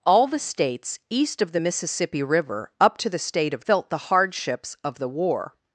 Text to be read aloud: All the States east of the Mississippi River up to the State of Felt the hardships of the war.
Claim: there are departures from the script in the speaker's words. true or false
false